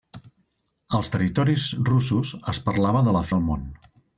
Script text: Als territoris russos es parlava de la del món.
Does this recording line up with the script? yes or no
yes